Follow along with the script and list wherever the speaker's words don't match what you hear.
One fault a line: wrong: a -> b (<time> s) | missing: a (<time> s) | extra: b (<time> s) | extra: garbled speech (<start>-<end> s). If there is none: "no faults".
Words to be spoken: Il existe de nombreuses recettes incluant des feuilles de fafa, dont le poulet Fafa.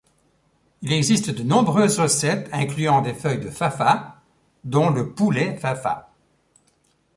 no faults